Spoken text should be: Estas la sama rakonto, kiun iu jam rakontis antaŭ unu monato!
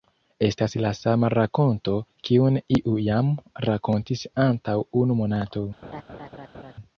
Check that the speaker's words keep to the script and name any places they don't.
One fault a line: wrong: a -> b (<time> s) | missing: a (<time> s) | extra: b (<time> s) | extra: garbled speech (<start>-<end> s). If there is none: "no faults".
no faults